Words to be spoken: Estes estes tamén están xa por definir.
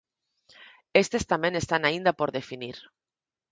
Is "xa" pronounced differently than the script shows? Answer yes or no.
yes